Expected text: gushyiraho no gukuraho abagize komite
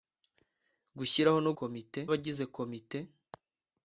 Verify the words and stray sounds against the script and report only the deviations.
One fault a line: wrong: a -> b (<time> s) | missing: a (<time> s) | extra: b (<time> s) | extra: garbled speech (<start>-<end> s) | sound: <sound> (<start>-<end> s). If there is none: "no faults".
wrong: gukuraho -> komite (1.6 s)